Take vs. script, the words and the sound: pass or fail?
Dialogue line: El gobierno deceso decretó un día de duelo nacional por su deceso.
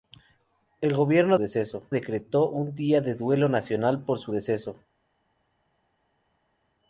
pass